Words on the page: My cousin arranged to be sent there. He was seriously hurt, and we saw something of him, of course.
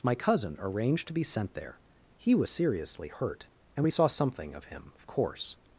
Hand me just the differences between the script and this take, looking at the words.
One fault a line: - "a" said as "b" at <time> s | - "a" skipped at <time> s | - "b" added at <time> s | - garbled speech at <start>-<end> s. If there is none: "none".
none